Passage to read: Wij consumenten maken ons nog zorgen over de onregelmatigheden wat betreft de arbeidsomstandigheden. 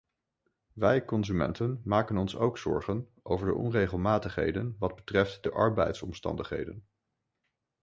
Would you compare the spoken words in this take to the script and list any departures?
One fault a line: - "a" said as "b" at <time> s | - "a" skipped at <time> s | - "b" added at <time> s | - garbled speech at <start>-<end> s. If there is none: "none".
- "nog" said as "ook" at 2.4 s